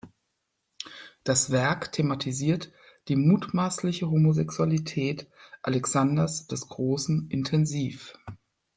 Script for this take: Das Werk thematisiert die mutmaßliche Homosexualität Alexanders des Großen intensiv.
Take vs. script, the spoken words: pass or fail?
pass